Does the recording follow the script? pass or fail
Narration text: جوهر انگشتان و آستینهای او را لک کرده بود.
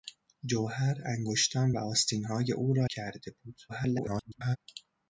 fail